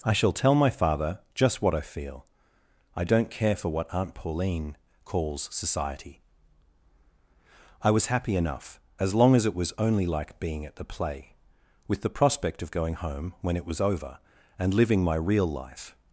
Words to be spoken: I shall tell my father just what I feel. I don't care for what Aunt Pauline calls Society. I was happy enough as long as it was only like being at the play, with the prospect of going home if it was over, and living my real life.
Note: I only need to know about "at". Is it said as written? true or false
true